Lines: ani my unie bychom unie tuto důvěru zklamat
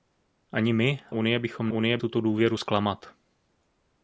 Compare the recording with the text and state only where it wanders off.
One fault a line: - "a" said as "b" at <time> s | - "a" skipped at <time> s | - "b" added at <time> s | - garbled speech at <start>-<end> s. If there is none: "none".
none